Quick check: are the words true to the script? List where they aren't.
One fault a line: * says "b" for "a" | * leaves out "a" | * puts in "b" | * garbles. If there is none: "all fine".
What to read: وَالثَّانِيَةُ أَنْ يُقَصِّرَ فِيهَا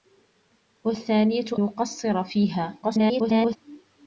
* leaves out "أَنْ"
* garbles